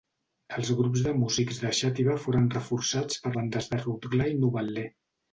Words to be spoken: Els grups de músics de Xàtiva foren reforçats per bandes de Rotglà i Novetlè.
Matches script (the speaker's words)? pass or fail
pass